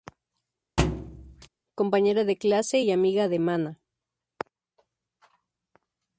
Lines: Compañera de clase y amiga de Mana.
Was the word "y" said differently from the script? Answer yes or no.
no